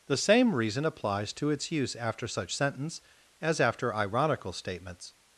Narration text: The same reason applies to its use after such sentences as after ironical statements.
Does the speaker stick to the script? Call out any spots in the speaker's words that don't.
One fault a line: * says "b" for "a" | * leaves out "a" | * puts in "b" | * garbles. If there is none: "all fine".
* says "sentence" for "sentences"